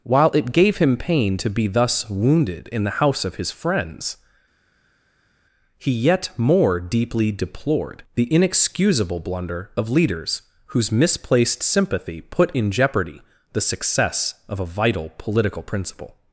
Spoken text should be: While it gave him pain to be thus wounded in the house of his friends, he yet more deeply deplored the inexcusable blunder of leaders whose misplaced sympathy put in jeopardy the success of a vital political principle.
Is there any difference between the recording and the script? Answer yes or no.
no